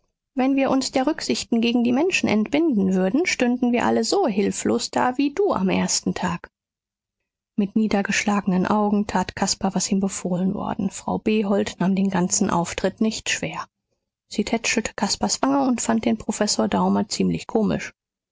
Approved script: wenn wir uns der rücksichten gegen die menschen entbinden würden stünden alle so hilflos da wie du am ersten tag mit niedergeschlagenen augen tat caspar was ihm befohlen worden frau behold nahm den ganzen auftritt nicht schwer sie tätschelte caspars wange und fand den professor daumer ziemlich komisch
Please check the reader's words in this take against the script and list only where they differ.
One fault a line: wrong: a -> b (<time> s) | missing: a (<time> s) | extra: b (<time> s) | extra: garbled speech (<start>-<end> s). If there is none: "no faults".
extra: wir (3.7 s)